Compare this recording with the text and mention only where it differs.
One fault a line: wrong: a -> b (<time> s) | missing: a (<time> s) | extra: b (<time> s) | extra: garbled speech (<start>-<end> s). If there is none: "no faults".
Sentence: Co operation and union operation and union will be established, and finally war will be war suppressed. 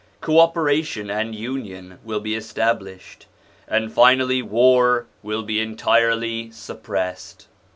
missing: operation and union (2.0 s)
wrong: war -> entirely (5.6 s)